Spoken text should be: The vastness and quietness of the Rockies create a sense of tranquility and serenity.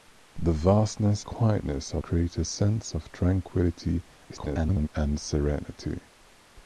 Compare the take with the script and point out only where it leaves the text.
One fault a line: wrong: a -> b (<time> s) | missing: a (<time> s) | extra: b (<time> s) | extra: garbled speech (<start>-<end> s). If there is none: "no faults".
missing: and (1.2 s)
missing: the Rockies (2.0 s)
extra: garbled speech (4.3-4.9 s)